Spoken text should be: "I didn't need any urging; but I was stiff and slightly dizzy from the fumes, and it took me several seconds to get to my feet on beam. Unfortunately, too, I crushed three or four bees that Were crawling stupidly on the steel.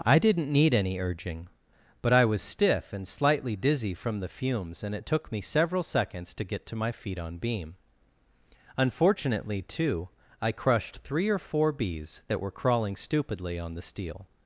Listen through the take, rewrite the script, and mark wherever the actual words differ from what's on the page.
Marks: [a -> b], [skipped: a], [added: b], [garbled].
"I didn't need any urging; but I was stiff and slightly dizzy from the fumes, and it took me several seconds to get to my feet on beam. Unfortunately, too, I crushed three or four bees that Were crawling stupidly on the steel.